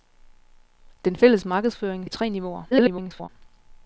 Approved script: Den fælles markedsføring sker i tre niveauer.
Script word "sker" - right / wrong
wrong